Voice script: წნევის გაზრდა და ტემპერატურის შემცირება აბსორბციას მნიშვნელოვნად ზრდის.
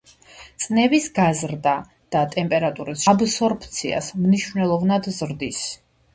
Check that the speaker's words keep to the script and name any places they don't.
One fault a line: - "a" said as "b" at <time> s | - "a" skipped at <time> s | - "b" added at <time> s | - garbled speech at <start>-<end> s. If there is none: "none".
- "შემცირება" skipped at 3.0 s